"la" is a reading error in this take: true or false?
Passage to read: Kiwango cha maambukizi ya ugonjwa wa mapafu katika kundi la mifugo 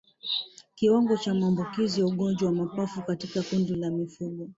false